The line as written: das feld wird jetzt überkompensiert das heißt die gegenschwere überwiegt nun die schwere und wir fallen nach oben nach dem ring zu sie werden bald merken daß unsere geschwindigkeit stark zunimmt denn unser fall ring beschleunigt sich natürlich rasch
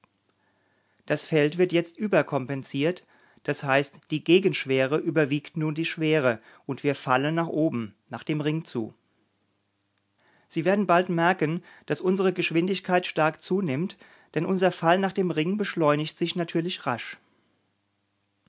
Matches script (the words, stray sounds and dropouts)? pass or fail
fail